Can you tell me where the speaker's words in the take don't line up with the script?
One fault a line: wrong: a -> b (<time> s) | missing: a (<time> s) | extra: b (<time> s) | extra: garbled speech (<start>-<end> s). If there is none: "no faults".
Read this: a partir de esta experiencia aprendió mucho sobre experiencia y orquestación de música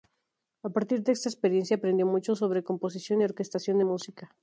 wrong: experiencia -> composición (2.6 s)